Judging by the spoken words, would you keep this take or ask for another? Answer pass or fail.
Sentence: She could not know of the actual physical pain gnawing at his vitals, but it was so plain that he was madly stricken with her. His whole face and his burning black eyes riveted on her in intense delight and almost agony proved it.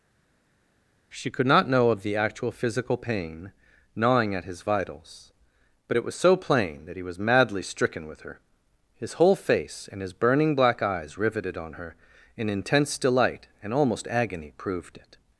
pass